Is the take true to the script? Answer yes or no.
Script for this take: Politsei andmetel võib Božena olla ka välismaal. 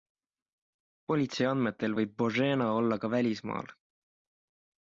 yes